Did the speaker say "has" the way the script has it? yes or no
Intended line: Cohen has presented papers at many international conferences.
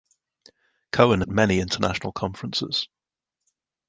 no